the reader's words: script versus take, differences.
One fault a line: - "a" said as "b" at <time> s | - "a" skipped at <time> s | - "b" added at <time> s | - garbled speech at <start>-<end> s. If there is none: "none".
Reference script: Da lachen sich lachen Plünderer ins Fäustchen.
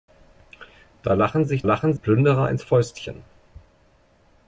none